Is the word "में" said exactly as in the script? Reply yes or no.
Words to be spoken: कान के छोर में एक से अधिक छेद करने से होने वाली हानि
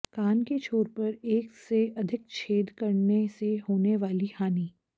no